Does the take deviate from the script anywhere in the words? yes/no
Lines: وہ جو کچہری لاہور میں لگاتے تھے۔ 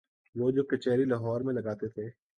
no